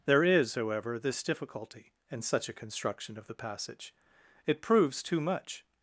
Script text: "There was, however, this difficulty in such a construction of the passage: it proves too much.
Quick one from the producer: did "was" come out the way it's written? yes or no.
no